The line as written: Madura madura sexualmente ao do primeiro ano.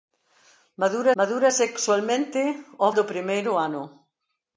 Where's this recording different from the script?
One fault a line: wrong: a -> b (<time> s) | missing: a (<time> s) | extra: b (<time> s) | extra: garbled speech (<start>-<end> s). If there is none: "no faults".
no faults